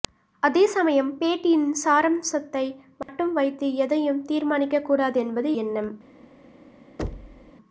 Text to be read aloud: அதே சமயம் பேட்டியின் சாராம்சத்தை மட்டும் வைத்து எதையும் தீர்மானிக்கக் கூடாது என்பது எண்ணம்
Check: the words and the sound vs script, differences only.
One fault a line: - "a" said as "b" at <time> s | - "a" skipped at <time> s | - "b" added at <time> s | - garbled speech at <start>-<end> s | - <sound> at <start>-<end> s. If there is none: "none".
- dropout at 3.0-3.1 s
- thud at 7.0-7.5 s